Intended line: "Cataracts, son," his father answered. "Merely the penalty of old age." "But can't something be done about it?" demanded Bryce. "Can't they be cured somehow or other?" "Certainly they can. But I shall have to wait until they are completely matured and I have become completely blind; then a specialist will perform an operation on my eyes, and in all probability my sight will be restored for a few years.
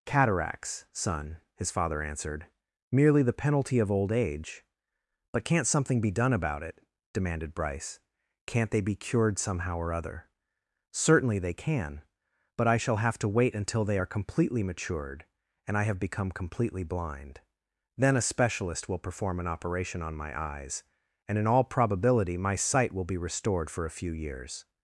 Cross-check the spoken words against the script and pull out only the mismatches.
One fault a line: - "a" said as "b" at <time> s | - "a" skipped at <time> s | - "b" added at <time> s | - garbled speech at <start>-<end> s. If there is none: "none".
none